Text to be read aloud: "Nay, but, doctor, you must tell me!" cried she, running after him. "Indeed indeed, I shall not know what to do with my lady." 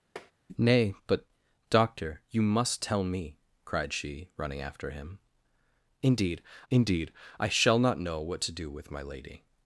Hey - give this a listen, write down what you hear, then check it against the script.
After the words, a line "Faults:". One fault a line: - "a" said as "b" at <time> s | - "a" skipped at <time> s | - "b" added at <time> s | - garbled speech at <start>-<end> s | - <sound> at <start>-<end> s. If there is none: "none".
"Nay, but, doctor, you must tell me!" cried she, running after him. "Indeed indeed, I shall not know what to do with my lady."
Faults:
- tap at 0.2-0.3 s